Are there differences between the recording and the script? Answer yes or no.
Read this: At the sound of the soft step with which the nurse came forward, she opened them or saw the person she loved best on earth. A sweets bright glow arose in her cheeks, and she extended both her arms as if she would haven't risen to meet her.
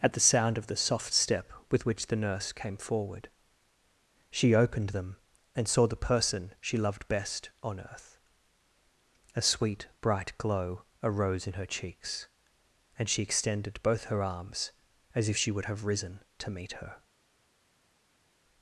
yes